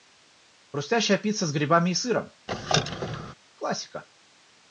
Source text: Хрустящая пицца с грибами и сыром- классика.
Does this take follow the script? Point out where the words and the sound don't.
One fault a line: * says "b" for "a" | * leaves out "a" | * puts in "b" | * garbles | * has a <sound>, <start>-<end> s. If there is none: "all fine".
* has a squeak, 2.5-3.3 s